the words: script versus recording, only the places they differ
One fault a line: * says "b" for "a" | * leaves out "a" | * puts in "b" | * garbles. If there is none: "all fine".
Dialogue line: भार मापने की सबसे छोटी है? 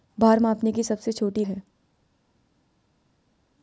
all fine